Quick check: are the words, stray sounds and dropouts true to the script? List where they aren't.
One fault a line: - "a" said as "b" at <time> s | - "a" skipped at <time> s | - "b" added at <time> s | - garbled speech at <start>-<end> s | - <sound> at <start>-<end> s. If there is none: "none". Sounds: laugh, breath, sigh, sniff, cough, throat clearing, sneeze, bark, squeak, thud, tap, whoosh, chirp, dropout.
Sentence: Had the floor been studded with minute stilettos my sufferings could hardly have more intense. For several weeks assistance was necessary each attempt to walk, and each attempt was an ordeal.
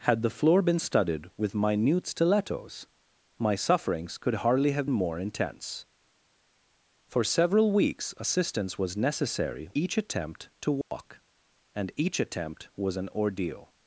- dropout at 10.8-10.9 s